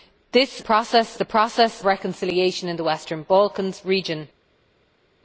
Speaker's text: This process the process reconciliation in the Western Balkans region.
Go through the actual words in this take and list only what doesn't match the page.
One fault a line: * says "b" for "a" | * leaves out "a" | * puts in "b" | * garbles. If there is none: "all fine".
all fine